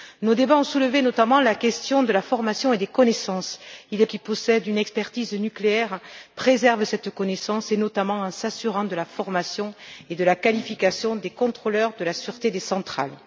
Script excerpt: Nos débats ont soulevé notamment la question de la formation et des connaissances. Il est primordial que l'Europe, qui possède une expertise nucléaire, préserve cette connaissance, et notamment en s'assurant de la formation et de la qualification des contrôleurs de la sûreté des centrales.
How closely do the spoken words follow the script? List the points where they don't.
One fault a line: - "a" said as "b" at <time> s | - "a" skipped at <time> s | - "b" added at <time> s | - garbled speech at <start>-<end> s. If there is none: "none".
- "primordial que l'Europe" skipped at 4.0 s